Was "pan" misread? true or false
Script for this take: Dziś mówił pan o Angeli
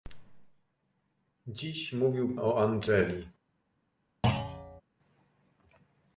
true